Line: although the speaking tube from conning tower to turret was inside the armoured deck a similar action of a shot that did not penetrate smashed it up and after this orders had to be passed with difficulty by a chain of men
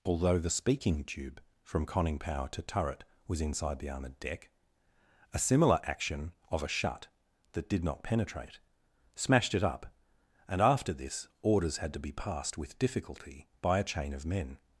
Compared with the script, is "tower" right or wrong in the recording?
wrong